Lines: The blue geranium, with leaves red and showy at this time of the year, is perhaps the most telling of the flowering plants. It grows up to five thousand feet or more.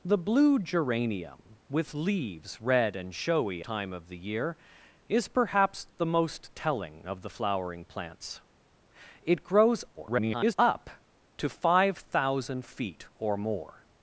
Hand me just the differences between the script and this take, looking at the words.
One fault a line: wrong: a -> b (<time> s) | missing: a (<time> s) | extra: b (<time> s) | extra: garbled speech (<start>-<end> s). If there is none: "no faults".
missing: at this (3.6 s)
extra: garbled speech (10.0-10.5 s)